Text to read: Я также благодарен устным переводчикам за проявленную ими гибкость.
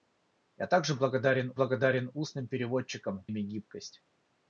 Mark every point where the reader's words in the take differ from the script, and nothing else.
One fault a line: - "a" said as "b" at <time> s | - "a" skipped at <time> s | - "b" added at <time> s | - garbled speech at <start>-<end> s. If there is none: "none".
- "благодарен" added at 1.5 s
- "за проявленную" skipped at 3.3 s